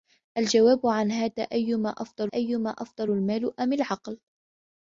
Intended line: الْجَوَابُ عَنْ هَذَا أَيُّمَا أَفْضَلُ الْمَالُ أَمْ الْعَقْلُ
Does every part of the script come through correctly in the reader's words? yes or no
no